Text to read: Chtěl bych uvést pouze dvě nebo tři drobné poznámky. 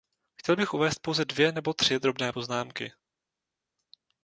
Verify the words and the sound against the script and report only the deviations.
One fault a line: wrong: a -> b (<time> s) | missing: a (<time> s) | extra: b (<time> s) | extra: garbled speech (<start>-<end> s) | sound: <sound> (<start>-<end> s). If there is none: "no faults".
no faults